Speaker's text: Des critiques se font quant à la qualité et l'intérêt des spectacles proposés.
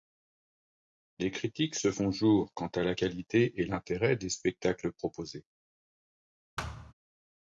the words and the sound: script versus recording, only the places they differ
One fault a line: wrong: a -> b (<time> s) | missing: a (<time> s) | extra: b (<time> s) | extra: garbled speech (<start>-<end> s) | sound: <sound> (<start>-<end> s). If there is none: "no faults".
extra: jour (2.1 s)
sound: thud (6.6-6.9 s)